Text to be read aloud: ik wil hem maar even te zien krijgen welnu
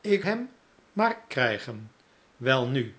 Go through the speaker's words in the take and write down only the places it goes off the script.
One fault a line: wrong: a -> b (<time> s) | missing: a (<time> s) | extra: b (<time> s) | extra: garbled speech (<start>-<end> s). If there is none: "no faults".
missing: wil (0.2 s)
missing: even te zien (1.2 s)